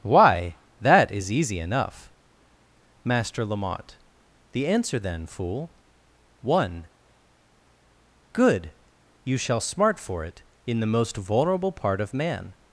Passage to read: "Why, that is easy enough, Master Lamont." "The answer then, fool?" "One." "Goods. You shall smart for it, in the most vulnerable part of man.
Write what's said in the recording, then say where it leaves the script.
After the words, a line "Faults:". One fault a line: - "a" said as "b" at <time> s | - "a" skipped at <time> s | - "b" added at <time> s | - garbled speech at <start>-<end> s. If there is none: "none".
"Why, that is easy enough, Master Lamont." "The answer then, fool?" "One." "Good. You shall smart for it, in the most vulnerable part of man.
Faults:
- "Goods" said as "Good" at 8.3 s